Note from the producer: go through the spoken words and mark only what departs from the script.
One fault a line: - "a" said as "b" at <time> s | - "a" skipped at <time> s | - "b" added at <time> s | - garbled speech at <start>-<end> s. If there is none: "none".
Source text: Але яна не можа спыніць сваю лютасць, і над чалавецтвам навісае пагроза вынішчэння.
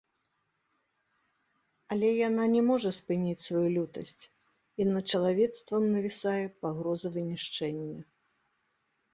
none